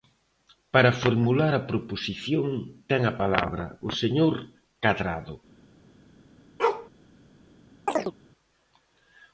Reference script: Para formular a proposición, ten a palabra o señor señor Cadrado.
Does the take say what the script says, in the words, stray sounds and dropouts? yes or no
no